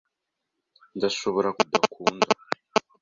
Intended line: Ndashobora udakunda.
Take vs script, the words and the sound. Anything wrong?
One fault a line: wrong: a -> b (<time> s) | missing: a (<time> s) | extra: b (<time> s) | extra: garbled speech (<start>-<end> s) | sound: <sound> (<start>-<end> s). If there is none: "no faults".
no faults